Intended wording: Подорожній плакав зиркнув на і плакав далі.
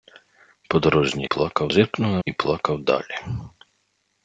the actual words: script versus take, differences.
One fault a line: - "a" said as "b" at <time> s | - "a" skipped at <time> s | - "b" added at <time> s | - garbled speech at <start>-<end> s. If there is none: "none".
none